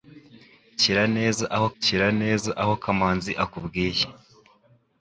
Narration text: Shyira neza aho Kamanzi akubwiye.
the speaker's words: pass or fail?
fail